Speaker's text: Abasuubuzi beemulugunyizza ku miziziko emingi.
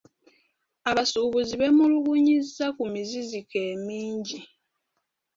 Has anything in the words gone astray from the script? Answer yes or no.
no